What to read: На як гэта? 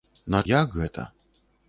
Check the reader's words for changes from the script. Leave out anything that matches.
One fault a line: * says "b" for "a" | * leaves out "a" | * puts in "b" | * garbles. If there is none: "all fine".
all fine